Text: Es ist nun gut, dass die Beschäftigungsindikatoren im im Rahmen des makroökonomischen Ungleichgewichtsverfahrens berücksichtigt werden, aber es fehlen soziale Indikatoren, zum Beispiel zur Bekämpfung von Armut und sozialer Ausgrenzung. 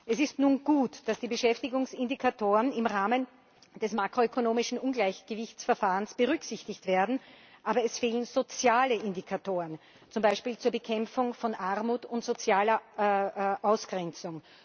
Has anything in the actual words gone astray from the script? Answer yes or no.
yes